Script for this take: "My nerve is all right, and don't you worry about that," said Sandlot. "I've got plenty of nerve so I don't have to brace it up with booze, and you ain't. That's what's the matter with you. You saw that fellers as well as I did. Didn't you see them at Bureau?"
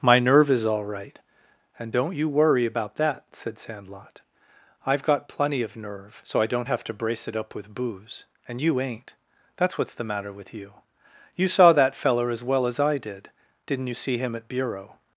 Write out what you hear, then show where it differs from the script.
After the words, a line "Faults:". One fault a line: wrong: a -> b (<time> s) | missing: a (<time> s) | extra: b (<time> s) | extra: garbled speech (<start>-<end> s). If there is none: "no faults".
"My nerve is all right, and don't you worry about that," said Sandlot. "I've got plenty of nerve so I don't have to brace it up with booze, and you ain't. That's what's the matter with you. You saw that feller as well as I did. Didn't you see him at Bureau?"
Faults:
wrong: fellers -> feller (12.0 s)
wrong: them -> him (14.2 s)